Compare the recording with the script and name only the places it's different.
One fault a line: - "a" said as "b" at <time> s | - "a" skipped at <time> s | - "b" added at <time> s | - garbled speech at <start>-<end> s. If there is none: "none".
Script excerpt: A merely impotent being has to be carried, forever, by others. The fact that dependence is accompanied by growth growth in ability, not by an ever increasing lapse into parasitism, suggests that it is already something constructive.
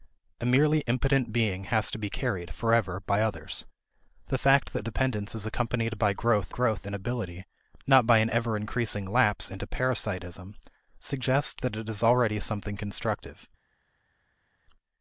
none